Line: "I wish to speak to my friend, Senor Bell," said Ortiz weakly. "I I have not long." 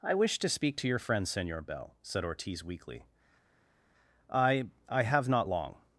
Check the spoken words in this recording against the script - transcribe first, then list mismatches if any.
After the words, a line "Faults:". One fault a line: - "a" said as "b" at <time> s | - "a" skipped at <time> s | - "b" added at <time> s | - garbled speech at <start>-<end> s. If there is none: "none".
"I wish to speak to your friend, Senor Bell," said Ortiz weakly. "I I have not long."
Faults:
- "my" said as "your" at 0.9 s